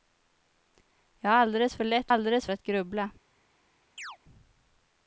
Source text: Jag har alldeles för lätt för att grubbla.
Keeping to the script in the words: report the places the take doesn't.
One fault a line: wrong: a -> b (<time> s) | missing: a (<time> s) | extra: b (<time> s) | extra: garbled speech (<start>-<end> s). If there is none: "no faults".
wrong: för -> alldeles (2.1 s)